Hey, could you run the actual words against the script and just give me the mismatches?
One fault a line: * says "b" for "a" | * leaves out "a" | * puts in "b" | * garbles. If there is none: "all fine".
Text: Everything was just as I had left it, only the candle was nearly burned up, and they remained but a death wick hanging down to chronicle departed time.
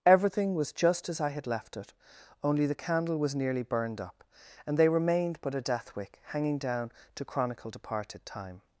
all fine